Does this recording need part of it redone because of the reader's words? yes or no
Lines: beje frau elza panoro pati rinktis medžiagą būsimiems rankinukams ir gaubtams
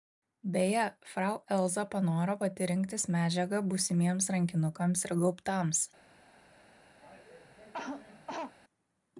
no